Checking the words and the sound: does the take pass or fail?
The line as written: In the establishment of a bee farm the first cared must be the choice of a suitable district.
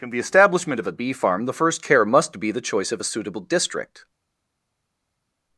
fail